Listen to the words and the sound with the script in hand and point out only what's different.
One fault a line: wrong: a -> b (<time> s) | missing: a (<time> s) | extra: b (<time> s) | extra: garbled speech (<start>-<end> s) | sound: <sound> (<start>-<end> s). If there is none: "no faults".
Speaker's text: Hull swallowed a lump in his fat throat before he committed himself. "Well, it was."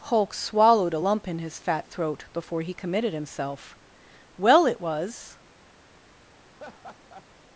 wrong: Hull -> Hulk (0.1 s)
sound: laugh (6.5-7.3 s)